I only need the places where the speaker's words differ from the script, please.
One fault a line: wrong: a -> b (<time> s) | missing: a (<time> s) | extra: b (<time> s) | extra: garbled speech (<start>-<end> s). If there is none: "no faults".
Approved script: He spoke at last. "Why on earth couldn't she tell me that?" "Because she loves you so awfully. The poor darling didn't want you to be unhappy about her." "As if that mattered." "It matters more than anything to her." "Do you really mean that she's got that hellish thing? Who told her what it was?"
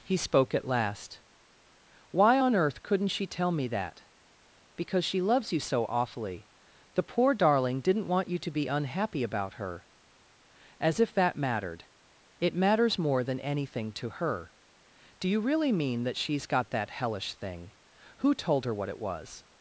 no faults